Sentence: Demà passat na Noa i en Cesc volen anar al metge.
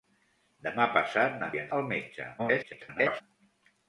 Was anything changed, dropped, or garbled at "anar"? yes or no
yes